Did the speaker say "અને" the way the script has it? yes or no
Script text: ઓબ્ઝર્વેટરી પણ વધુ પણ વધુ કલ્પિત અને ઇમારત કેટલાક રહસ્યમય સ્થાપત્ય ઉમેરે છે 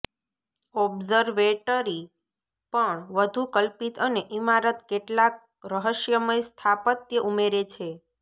yes